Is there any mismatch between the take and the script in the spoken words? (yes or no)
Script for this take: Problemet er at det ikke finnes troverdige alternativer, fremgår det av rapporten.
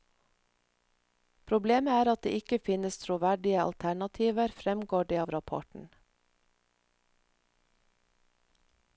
no